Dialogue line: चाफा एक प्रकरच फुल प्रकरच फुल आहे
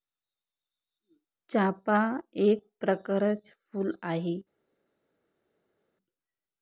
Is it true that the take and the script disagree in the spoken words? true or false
true